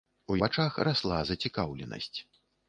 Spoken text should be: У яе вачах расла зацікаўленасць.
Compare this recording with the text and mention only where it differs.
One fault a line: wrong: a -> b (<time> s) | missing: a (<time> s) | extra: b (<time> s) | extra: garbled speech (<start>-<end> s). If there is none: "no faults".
missing: яе (0.4 s)